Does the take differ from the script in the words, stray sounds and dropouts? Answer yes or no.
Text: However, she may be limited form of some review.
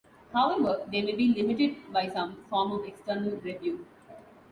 yes